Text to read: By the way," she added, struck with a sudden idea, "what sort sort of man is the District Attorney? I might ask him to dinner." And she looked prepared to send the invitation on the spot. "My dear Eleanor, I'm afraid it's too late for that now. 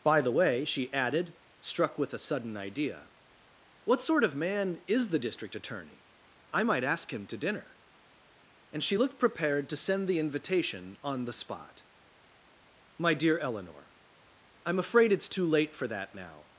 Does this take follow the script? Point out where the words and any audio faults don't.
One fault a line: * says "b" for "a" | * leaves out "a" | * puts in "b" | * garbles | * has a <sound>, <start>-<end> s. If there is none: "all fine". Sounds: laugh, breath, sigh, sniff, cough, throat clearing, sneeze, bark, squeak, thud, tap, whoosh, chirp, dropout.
* leaves out "sort"